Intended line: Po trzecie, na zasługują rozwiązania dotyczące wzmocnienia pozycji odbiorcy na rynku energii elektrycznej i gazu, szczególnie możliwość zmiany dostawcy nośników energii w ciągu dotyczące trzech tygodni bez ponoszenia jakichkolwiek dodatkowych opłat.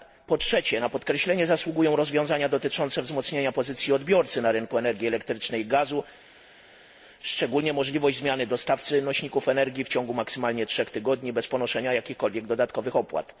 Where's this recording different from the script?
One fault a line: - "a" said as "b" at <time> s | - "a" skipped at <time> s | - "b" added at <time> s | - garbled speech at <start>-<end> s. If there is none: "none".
- "podkreślenie" added at 0.9 s
- "dotyczące" said as "maksymalnie" at 10.1 s